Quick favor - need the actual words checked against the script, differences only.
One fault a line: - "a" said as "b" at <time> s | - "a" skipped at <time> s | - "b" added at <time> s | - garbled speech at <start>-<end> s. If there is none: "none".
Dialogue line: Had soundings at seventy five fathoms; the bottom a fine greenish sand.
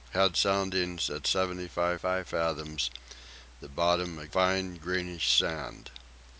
- "five" added at 1.9 s